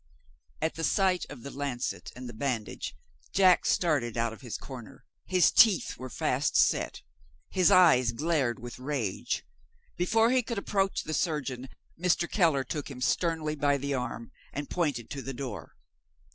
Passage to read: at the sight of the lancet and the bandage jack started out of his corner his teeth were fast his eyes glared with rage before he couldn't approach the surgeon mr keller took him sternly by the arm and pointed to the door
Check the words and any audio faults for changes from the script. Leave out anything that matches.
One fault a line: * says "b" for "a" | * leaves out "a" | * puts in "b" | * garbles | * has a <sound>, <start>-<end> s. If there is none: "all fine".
* puts in "set"
* says "could" for "couldn't"